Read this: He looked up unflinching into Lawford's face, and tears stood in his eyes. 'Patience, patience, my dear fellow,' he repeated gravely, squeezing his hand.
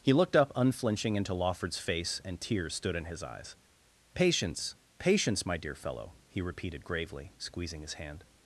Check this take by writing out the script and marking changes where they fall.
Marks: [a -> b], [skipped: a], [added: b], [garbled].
He looked up unflinching into Lawford's face, and tears stood in his eyes. 'Patience, patience, my dear fellow,' he repeated gravely, squeezing his hand.